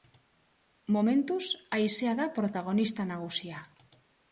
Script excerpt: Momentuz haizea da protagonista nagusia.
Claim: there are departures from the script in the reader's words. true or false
false